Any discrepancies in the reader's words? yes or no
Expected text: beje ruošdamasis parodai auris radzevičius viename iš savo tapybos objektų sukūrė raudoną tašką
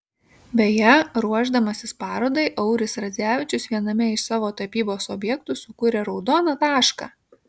no